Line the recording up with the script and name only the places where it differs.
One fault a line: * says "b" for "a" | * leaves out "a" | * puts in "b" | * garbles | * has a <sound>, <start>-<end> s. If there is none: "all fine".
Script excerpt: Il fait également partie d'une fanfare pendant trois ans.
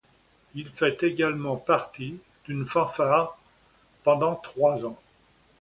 all fine